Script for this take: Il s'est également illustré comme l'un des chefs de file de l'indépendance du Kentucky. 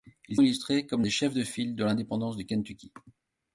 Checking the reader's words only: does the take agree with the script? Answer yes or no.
no